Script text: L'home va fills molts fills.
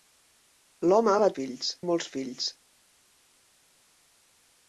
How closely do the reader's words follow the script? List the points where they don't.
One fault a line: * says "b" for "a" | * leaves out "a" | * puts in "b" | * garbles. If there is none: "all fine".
all fine